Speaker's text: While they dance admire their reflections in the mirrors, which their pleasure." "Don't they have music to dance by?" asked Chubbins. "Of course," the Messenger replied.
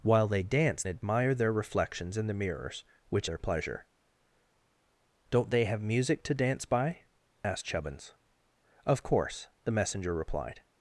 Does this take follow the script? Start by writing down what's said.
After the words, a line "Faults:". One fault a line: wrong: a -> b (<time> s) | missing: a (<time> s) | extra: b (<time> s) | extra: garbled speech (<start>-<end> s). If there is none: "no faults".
While they dance admire their reflections in the mirrors, which their pleasure." "Don't they have music to dance by?" asked Chubbins. "Of course," the Messenger replied.
Faults:
no faults